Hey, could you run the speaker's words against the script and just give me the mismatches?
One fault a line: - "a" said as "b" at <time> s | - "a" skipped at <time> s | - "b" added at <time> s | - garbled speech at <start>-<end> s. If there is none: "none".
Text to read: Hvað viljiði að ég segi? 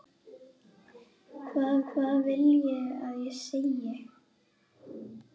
- "hvað" added at 1.9 s